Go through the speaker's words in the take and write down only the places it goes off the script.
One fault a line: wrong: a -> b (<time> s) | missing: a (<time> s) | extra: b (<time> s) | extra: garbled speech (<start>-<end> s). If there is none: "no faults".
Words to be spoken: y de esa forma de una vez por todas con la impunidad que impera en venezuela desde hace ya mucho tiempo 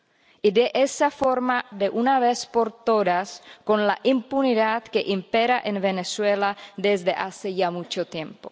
no faults